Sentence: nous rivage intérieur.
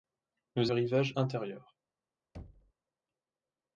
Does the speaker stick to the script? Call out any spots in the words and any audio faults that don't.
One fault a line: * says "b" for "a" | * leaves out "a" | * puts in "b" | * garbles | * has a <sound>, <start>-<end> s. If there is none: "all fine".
* has a thud, 2.3-2.7 s